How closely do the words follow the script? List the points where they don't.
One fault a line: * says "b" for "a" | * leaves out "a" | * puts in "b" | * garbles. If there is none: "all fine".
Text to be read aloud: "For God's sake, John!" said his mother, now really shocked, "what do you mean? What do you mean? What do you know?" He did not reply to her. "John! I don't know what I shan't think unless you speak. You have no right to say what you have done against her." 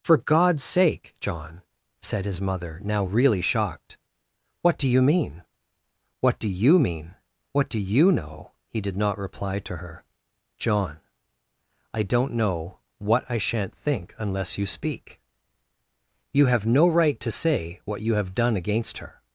all fine